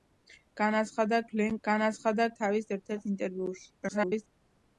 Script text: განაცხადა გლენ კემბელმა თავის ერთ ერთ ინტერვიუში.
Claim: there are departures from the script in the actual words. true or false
true